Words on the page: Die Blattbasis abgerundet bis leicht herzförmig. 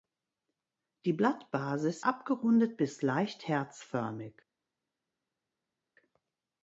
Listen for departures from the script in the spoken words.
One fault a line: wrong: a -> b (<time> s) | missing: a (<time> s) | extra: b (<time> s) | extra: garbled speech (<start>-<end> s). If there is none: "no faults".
no faults